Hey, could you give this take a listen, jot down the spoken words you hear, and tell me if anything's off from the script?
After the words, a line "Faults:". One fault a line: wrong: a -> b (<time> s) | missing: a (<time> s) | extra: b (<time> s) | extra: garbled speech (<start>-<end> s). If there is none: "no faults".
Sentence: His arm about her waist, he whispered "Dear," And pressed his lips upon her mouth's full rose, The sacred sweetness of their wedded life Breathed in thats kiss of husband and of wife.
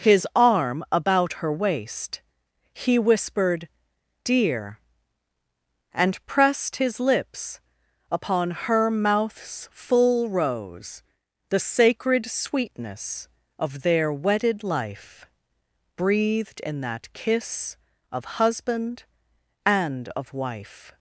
His arm about her waist, he whispered "Dear," And pressed his lips upon her mouth's full rose, The sacred sweetness of their wedded life Breathed in that kiss of husband and of wife.
Faults:
wrong: thats -> that (16.8 s)